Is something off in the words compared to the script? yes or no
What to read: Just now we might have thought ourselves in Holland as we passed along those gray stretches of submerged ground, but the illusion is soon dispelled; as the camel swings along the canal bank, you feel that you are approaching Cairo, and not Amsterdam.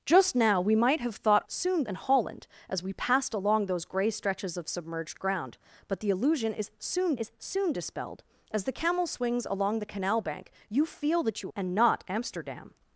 yes